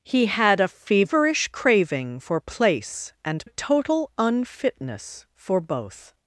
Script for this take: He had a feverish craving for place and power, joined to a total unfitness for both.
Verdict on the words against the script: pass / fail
fail